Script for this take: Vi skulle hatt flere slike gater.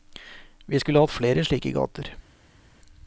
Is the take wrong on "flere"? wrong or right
right